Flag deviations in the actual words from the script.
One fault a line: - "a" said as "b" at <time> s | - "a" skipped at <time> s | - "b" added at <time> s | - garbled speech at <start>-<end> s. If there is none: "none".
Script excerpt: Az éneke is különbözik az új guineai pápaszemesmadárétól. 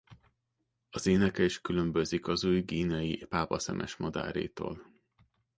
none